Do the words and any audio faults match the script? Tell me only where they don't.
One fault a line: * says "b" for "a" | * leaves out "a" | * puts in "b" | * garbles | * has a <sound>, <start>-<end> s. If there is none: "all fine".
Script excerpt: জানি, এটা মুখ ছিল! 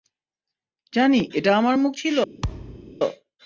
* puts in "আমার"
* has a thud, 2.4-2.9 s